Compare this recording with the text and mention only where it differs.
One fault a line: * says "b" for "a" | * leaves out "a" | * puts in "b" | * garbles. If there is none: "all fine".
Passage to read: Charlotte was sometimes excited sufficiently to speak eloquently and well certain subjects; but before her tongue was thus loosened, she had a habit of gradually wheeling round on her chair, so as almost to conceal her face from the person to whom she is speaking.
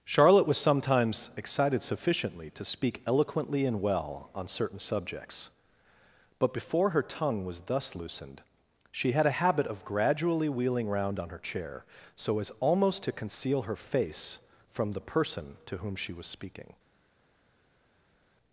* puts in "on"
* says "was" for "is"